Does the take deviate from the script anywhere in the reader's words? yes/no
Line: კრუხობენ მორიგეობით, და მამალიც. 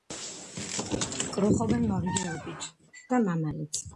no